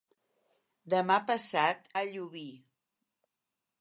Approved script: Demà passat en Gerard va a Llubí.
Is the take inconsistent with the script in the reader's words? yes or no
yes